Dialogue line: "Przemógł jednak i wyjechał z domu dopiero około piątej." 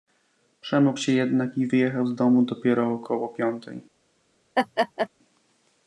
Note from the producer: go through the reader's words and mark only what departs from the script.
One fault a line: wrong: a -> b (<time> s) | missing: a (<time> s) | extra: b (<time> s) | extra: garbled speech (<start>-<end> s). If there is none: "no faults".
extra: się (1.0 s)